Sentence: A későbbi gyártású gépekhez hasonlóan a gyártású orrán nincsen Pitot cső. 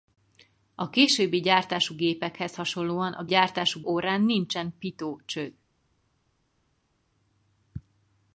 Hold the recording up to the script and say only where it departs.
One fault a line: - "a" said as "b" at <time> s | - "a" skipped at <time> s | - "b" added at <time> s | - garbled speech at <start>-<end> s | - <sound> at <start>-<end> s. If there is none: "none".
none